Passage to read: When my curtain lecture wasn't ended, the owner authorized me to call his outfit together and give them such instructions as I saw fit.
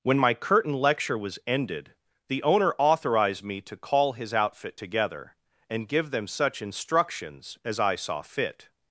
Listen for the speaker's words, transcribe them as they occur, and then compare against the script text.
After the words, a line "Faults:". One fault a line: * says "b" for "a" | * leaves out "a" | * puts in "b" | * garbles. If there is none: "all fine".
When my curtain lecture was ended, the owner authorized me to call his outfit together and give them such instructions as I saw fit.
Faults:
* says "was" for "wasn't"